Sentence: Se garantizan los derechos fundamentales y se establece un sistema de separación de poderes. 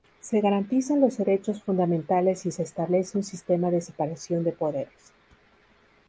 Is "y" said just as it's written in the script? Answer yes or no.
yes